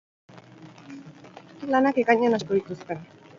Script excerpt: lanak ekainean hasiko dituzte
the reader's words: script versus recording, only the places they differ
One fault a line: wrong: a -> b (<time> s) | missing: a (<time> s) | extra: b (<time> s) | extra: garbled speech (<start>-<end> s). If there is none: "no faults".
no faults